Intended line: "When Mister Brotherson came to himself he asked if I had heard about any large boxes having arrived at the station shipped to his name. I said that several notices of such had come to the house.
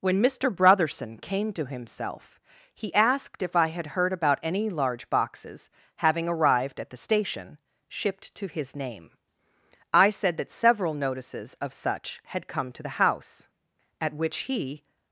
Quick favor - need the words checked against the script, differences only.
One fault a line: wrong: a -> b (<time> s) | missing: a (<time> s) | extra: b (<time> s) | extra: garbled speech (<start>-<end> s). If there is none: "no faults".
extra: At which he (14.0 s)